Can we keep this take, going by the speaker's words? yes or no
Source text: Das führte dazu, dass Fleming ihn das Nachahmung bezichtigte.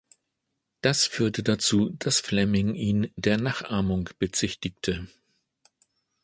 no